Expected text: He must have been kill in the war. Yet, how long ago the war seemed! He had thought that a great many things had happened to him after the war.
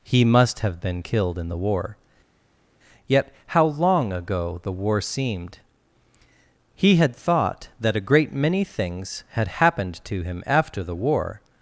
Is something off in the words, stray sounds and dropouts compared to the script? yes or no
yes